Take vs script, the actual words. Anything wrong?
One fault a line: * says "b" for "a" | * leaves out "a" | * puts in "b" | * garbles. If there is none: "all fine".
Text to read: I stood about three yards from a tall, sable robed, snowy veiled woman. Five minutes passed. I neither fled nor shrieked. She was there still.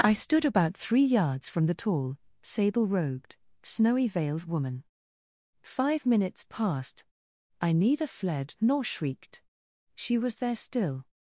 * says "the" for "a"